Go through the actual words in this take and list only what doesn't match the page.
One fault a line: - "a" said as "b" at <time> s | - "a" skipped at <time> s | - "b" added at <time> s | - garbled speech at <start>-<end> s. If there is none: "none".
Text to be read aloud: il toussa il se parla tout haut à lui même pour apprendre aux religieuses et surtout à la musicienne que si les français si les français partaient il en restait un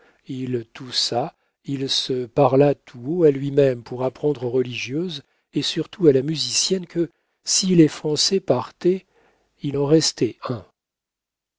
- "si les français" skipped at 8.4 s